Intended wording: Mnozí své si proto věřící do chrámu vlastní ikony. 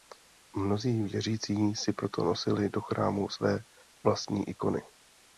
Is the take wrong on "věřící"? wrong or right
wrong